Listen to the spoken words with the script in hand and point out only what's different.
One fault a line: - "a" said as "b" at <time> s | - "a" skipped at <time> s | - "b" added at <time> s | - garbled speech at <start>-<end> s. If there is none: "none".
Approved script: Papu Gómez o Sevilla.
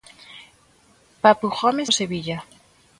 none